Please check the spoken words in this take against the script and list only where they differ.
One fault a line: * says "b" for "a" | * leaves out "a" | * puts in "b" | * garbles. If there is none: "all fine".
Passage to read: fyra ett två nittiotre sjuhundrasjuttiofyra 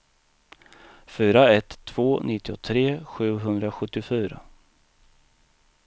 all fine